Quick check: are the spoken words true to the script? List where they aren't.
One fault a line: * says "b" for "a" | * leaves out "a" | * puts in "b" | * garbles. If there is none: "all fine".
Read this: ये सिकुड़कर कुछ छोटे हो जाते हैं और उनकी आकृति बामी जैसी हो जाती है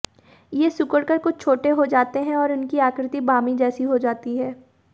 all fine